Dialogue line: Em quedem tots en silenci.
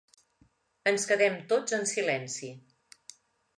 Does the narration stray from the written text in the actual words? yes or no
yes